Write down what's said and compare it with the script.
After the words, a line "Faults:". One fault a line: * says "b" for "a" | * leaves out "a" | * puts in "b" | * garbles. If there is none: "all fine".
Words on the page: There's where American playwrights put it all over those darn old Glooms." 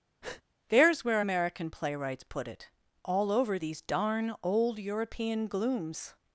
There's where American playwrights put it all over these darn old European glooms."
Faults:
* says "these" for "those"
* puts in "European"